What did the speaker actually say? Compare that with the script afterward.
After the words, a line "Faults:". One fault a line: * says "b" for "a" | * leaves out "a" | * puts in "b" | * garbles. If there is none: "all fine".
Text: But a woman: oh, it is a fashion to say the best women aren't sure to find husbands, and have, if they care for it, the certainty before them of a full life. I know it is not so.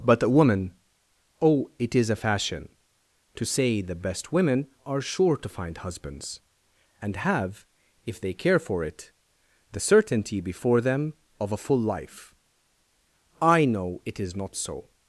But a woman: oh, it is a fashion to say the best women are sure to find husbands, and have, if they care for it, the certainty before them of a full life. I know it is not so.
Faults:
* says "are" for "aren't"